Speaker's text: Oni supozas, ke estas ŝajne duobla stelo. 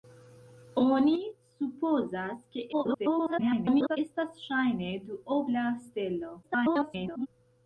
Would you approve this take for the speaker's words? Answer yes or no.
no